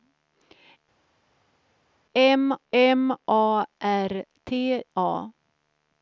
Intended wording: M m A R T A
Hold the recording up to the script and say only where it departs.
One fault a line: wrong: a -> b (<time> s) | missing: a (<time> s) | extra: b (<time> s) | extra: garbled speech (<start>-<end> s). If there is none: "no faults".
no faults